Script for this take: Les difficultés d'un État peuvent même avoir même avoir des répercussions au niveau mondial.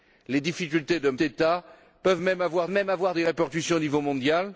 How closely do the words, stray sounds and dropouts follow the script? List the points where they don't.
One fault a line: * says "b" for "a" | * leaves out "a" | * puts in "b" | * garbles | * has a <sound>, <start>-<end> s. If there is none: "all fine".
all fine